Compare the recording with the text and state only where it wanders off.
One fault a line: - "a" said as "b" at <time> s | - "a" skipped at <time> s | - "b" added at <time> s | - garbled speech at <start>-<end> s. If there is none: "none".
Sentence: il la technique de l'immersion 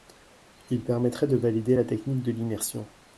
- "permettrait de valider" added at 0.8 s